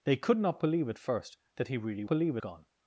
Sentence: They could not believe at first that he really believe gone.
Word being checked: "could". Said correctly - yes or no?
yes